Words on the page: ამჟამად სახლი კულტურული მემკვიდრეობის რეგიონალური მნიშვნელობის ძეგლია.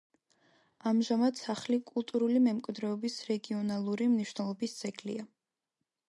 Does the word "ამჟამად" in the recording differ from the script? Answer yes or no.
no